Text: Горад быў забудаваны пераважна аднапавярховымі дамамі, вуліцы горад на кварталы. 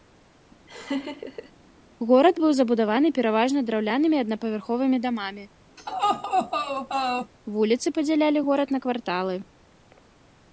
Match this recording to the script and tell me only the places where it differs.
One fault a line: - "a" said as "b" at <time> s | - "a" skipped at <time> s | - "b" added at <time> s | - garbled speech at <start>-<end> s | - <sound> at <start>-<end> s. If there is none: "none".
- laugh at 0.7-1.5 s
- "драўлянымі" added at 3.7 s
- laugh at 5.8-7.3 s
- "падзялялі" added at 8.0 s